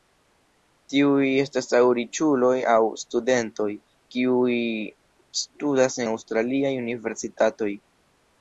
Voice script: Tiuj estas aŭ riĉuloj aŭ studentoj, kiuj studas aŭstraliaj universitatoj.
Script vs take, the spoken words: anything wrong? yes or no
no